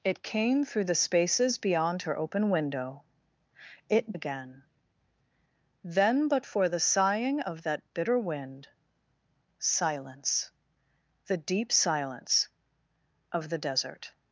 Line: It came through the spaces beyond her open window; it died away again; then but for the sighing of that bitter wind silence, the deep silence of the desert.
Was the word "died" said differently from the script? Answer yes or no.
yes